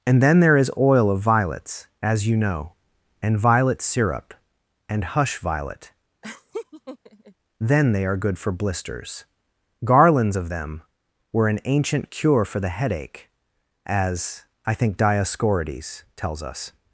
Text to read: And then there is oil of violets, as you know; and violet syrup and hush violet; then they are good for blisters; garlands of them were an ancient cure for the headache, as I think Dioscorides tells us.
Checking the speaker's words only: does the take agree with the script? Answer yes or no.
yes